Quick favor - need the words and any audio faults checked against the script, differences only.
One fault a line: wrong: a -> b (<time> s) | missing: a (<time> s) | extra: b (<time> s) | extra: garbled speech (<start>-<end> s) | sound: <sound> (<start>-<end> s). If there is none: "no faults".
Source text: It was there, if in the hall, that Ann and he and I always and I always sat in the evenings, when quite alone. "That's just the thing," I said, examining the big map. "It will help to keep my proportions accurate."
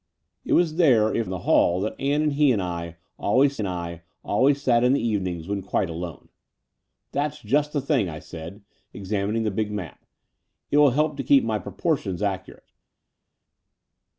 no faults